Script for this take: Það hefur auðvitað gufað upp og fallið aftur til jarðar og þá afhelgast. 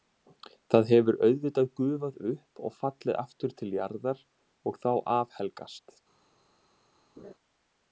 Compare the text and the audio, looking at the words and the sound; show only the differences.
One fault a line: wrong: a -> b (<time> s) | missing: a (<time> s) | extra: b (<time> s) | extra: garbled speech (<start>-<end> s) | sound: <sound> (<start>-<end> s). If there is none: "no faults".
sound: laugh (7.2-7.3 s)